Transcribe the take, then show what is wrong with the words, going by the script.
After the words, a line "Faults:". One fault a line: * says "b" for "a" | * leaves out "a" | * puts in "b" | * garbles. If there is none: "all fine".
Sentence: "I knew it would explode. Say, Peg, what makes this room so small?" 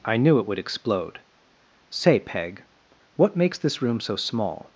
"I knew it would explode. Say, Peg, what makes this room so small?"
Faults:
all fine